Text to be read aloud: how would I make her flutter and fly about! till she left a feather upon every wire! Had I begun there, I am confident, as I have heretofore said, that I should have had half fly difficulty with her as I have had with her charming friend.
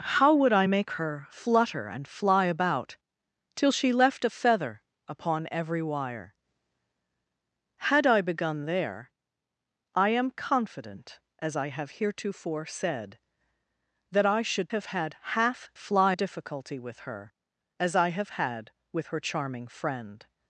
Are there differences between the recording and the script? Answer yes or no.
no